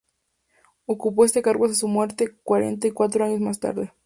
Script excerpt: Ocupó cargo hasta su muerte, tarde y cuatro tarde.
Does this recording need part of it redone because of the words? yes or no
yes